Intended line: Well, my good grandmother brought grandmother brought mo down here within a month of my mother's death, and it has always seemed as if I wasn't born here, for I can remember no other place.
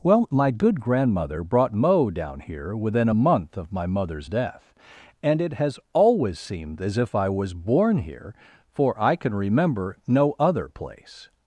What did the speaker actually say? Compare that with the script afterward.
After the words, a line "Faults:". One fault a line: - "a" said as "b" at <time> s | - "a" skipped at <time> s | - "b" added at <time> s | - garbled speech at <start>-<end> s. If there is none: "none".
Well, my good grandmother brought mo down here within a month of my mother's death, and it has always seemed as if I was born here, for I can remember no other place.
Faults:
- "grandmother brought" skipped at 1.8 s
- "wasn't" said as "was" at 7.3 s